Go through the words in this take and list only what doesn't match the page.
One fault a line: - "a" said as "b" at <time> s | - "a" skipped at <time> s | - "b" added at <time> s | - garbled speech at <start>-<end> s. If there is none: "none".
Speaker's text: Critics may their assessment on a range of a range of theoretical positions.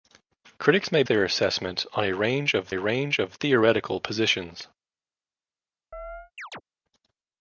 none